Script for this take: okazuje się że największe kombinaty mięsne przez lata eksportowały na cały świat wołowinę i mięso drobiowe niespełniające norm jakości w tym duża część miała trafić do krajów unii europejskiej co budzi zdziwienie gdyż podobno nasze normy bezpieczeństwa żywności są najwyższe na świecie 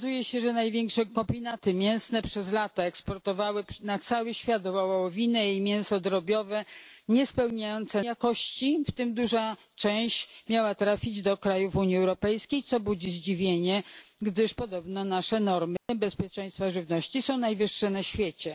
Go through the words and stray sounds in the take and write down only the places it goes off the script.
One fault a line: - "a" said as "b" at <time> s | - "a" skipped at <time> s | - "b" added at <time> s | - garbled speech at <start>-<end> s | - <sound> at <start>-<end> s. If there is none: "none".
- "norm" skipped at 8.0 s
- dropout at 15.8-15.9 s